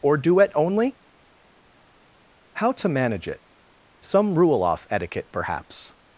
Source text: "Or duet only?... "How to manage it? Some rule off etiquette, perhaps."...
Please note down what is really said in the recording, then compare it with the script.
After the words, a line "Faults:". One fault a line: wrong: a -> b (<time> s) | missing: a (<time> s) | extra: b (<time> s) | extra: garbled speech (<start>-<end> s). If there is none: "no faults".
"Or duet only?... "How to manage it? Some rule off etiquette, perhaps."...
Faults:
no faults